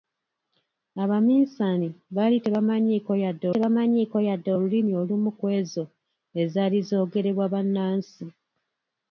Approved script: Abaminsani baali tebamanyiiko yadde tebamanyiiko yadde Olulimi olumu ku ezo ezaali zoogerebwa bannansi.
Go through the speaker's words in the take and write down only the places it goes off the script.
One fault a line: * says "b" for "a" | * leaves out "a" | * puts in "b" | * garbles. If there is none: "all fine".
all fine